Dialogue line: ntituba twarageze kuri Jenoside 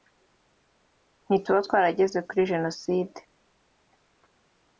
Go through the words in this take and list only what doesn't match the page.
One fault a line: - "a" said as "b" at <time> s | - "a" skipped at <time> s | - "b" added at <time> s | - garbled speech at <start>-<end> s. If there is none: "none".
none